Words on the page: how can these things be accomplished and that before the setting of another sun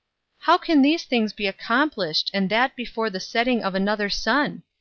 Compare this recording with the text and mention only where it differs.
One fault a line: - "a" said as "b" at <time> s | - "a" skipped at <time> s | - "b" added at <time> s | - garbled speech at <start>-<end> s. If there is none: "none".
none